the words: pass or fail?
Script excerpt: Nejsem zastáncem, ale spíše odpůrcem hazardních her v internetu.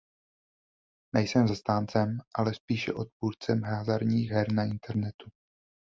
fail